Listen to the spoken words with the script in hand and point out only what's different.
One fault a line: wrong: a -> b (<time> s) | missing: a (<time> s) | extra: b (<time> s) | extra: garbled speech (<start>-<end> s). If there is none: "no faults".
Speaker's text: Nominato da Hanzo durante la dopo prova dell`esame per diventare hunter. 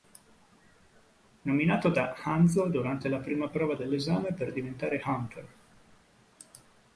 wrong: dopo -> prima (3.2 s)